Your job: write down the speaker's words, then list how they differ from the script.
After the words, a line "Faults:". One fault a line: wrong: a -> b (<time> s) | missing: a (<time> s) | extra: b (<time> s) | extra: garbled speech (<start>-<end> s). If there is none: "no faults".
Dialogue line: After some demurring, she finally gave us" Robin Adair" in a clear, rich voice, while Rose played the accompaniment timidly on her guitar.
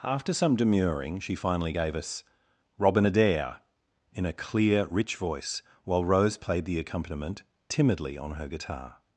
After some demurring, she finally gave us" Robin Adair" in a clear, rich voice, while Rose played the accompaniment timidly on her guitar.
Faults:
no faults